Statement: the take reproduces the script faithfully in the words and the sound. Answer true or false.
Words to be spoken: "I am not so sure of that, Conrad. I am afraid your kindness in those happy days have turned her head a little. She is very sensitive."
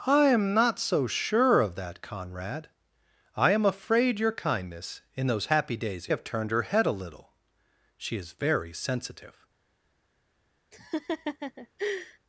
false